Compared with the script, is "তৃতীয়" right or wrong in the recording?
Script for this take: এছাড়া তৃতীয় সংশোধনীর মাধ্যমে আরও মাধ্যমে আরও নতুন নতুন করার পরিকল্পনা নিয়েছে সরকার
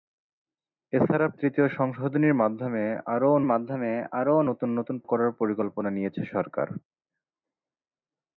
right